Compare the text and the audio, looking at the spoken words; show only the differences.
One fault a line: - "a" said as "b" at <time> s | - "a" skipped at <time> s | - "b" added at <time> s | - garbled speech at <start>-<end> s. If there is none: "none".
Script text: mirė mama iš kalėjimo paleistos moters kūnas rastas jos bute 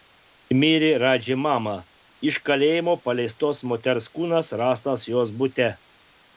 - "radži" added at 1.0 s